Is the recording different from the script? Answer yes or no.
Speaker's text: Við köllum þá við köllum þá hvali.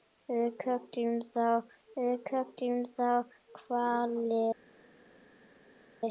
no